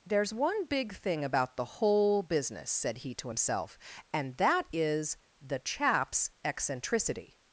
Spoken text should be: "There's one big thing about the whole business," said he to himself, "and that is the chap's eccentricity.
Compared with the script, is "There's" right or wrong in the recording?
right